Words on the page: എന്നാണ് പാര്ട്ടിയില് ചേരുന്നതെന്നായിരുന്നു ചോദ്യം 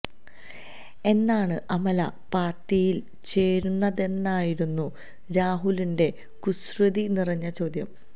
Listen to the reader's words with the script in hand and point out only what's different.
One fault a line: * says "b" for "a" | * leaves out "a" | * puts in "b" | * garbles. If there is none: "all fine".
* puts in "അമല"
* puts in "രാഹുലിന്റെ കുസൃതി നിറഞ്ഞ"